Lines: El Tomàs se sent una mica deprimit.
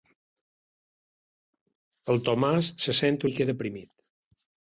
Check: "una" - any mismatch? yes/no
yes